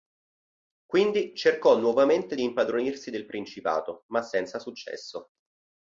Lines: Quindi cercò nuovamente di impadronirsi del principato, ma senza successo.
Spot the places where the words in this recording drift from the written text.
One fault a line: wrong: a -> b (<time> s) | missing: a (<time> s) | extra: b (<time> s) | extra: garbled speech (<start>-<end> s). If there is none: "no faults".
no faults